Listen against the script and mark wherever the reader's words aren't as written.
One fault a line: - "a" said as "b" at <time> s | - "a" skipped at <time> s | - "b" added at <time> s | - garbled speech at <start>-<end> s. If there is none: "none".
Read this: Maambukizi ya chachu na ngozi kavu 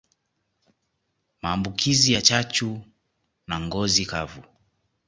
none